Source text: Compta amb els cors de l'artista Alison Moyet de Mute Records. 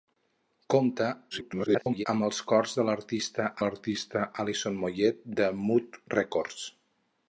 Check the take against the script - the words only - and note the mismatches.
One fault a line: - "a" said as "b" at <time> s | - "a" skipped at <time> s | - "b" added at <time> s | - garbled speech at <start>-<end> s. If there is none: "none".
- garbled speech at 1.3-2.1 s
- "l'artista" added at 3.6 s